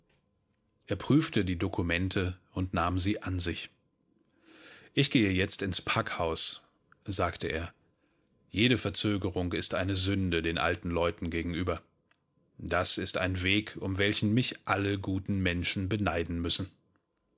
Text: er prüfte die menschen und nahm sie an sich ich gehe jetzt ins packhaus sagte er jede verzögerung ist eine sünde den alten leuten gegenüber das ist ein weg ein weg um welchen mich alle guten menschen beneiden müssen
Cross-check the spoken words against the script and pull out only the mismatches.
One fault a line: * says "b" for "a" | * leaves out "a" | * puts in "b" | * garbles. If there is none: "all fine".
* says "dokumente" for "menschen"
* leaves out "ein weg"